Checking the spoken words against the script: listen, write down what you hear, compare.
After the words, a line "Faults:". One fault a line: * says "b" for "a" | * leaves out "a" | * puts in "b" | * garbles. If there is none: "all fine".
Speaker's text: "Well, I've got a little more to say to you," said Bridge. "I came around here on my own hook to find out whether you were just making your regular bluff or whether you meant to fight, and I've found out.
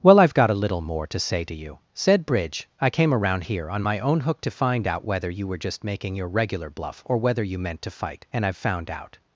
"Well, I've got a little more to say to you," said Bridge. "I came around here on my own hook to find out whether you were just making your regular bluff or whether you meant to fight, and I've found out.
Faults:
all fine